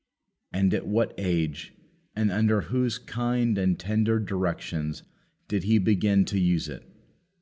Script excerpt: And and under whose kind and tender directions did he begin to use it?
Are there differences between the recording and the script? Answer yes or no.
yes